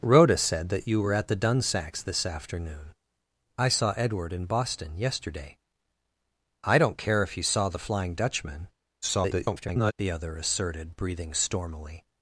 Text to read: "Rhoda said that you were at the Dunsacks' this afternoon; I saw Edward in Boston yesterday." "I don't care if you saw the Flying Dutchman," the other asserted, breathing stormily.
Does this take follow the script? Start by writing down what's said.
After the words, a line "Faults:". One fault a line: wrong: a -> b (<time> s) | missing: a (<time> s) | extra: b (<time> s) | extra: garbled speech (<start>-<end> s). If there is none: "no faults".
"Rhoda said that you were at the Dunsacks' this afternoon; I saw Edward in Boston yesterday." "I don't care if you saw the Flying Dutchman," [garbled] the other asserted, breathing stormily.
Faults:
extra: garbled speech (9.0-9.9 s)